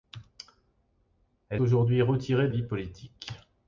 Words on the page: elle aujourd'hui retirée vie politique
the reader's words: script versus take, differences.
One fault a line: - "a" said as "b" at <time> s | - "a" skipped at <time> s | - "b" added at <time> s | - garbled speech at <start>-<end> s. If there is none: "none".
none